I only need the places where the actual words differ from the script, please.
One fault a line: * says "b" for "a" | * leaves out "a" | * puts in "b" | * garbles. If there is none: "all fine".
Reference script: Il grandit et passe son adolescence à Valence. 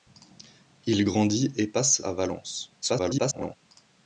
* leaves out "son adolescence"
* garbles